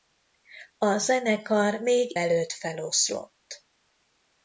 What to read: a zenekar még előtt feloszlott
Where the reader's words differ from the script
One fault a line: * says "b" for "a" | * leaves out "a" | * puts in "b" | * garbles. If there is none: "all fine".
all fine